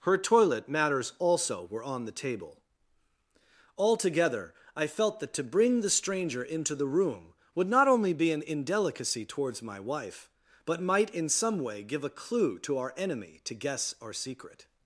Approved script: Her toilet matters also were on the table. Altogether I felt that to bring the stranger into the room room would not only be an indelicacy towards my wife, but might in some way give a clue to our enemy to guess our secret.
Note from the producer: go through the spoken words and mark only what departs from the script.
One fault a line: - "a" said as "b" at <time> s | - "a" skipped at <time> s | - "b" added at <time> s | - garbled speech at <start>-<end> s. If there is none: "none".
- "room" skipped at 7.3 s